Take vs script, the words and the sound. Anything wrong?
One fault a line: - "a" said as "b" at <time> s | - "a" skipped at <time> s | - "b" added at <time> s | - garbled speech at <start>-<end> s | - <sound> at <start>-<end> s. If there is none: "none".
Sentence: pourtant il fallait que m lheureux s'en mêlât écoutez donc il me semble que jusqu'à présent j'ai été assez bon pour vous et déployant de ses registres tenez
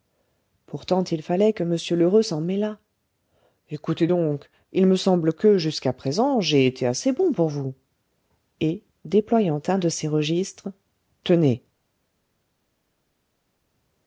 - "un" added at 9.7 s